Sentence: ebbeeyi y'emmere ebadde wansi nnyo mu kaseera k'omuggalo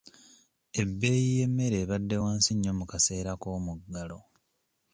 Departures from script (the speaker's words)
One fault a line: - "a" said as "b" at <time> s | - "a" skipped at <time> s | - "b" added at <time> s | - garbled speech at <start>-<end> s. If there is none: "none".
none